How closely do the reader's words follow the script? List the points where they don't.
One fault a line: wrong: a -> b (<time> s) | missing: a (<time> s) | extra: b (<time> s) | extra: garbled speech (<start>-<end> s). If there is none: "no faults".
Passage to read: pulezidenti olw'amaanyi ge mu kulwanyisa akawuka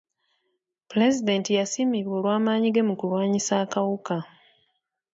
extra: yasiimibwa (1.6 s)